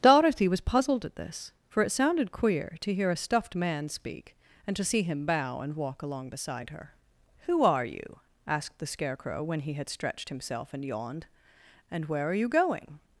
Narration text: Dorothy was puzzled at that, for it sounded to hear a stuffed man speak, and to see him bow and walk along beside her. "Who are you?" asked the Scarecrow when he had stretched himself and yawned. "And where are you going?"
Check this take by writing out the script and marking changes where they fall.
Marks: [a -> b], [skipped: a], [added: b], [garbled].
Dorothy was puzzled at [that, -> this] for it sounded [added: queer] to hear a stuffed man speak, and to see him bow and walk along beside her. "Who are you?" asked the Scarecrow when he had stretched himself and yawned. "And where are you going?"